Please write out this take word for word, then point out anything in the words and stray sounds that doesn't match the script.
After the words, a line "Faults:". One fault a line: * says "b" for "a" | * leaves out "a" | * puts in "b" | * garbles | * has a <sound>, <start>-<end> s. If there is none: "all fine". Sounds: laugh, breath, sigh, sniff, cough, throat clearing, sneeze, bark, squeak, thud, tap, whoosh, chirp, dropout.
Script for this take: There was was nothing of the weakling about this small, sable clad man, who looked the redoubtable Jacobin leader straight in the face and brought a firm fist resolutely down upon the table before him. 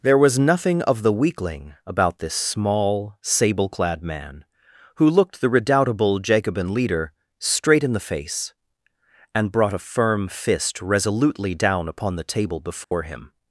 There was nothing of the weakling about this small, sable clad man, who looked the redoubtable Jacobin leader straight in the face and brought a firm fist resolutely down upon the table before him.
Faults:
* leaves out "was"
* has a dropout, 12.8-12.9 s